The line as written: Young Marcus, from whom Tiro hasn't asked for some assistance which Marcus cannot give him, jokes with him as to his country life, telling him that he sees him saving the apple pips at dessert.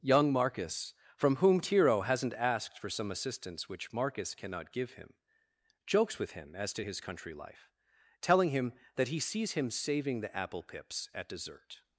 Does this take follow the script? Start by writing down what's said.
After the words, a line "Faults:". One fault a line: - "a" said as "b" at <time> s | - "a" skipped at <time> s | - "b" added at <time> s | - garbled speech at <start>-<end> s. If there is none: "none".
Young Marcus, from whom Tiro hasn't asked for some assistance which Marcus cannot give him, jokes with him as to his country life, telling him that he sees him saving the apple pips at dessert.
Faults:
none